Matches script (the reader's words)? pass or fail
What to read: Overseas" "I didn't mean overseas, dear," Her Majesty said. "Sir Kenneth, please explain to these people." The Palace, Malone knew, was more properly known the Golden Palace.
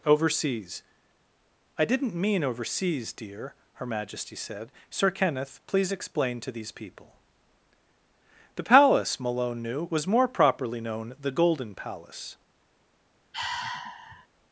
pass